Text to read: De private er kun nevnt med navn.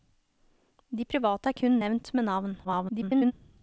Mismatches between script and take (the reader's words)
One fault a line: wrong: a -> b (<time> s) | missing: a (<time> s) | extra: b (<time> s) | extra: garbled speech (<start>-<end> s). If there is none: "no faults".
extra: garbled speech (2.6-3.3 s)